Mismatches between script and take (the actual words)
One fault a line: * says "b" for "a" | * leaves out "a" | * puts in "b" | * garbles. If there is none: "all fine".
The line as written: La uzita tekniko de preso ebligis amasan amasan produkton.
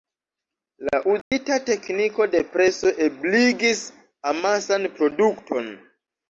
* leaves out "amasan"